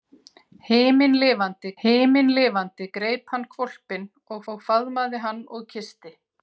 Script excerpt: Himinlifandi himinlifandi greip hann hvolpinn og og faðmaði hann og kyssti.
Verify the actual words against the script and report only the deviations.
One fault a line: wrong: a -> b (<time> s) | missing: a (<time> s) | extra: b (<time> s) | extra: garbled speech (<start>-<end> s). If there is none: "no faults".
no faults